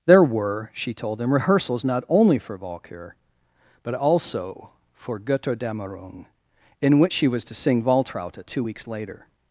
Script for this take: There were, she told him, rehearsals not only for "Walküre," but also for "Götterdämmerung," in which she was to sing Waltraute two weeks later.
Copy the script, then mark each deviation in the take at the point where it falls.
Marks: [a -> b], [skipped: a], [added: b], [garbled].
There were, she told him, rehearsals not only for "Walküre," but also for "Götterdämmerung," in which she was to sing Waltraute two weeks later.